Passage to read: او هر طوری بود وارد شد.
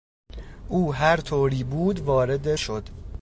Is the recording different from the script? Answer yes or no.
no